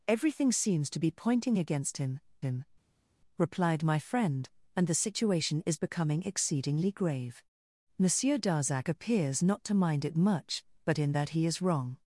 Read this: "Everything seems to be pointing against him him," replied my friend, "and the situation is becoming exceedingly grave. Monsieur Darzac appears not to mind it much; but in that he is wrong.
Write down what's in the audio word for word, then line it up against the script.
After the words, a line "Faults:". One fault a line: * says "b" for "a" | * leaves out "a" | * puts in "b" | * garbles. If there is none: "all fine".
"Everything seems to be pointing against him him," replied my friend, "and the situation is becoming exceedingly grave. Monsieur Darzac appears not to mind it much; but in that he is wrong.
Faults:
all fine